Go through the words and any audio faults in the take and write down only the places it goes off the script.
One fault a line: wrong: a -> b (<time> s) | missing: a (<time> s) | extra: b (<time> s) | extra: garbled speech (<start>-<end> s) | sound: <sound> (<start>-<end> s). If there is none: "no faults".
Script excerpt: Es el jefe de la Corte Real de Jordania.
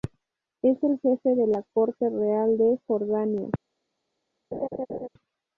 sound: laugh (4.5-5.1 s)